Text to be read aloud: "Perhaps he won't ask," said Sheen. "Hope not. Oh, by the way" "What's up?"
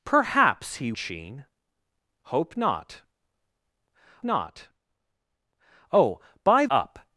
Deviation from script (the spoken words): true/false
true